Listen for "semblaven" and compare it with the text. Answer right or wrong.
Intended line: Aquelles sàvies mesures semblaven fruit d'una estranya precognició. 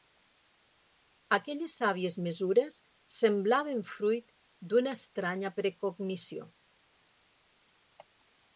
right